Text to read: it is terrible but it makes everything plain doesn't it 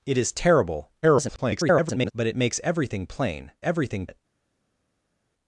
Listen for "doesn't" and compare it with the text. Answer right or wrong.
wrong